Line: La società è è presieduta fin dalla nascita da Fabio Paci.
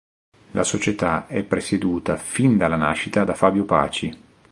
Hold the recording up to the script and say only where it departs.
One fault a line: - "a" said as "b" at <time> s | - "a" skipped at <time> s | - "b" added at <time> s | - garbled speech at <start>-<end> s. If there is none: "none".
- "è" skipped at 1.4 s